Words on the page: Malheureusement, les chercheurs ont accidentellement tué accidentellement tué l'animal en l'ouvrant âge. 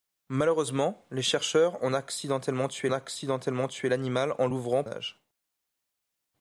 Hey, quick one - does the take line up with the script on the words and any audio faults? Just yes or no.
yes